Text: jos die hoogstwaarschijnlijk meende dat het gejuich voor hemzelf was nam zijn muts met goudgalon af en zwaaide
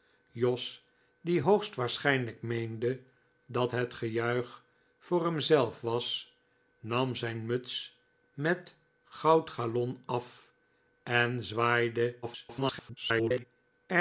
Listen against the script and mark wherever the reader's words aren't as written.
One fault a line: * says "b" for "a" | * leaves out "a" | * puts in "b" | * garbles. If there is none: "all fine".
* garbles